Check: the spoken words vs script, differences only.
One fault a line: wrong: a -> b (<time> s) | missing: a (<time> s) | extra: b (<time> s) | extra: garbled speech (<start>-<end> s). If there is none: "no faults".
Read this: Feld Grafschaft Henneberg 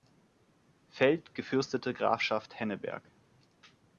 extra: gefürstete (1.3 s)